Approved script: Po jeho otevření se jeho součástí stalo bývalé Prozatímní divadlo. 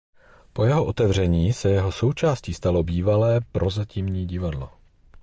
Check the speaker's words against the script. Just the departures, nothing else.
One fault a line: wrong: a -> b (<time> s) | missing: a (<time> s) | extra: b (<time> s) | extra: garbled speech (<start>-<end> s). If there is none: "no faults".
no faults